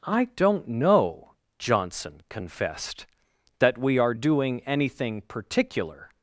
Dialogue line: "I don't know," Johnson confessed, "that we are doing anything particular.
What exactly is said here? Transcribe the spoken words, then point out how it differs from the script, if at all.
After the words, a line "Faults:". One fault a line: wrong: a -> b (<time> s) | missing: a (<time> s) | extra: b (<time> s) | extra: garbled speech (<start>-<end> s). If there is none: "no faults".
"I don't know," Johnson confessed, "that we are doing anything particular.
Faults:
no faults